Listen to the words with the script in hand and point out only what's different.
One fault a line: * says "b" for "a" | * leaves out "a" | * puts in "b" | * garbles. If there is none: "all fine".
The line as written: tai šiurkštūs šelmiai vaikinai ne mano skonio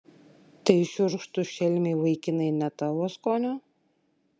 * says "tavo" for "mano"